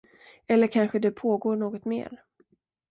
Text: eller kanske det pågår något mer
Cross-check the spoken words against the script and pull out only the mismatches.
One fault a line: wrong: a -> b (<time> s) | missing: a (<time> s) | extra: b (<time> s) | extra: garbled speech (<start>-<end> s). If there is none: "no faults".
no faults